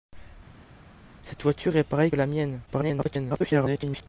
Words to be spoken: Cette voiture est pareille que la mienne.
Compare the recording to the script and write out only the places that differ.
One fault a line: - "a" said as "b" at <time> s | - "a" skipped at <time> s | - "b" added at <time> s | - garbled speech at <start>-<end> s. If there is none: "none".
- "que" skipped at 2.1 s
- garbled speech at 2.7-4.1 s